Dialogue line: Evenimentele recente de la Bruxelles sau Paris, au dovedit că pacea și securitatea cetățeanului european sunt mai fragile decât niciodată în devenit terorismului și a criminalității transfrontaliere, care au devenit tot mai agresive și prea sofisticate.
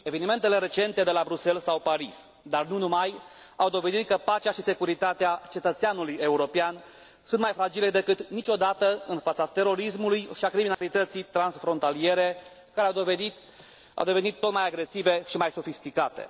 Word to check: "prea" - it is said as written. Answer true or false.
false